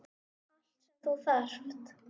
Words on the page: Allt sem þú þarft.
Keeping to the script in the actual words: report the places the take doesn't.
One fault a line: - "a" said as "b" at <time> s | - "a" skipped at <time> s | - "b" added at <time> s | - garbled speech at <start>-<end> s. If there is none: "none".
none